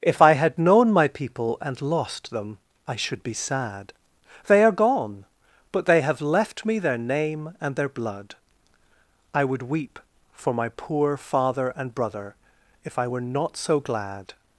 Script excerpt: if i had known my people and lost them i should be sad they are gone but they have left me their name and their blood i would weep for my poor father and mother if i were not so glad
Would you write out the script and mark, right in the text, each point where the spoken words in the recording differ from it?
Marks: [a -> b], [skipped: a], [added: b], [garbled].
if i had known my people and lost them i should be sad they are gone but they have left me their name and their blood i would weep for my poor father and [mother -> brother] if i were not so glad